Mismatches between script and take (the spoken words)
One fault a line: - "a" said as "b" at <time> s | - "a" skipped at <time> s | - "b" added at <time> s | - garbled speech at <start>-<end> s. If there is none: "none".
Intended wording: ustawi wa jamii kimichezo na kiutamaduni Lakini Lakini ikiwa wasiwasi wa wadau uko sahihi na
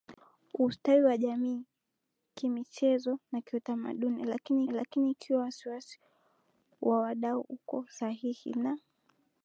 none